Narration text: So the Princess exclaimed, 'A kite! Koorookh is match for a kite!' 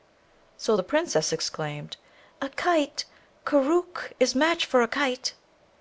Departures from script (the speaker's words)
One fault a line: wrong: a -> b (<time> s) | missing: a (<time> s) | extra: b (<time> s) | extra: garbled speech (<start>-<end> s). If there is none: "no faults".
no faults